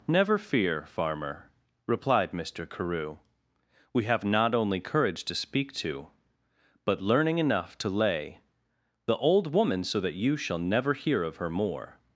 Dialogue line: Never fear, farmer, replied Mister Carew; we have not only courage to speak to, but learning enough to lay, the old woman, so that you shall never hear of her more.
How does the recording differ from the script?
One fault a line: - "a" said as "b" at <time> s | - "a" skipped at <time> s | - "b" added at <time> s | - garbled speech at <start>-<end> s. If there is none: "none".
none